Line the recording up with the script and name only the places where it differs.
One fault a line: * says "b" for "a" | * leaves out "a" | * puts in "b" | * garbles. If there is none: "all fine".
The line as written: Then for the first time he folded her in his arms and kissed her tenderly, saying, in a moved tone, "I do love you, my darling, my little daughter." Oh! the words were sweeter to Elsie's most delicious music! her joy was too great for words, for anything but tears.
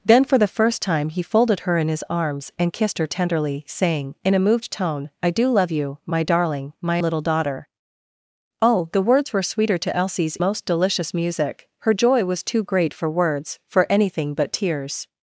all fine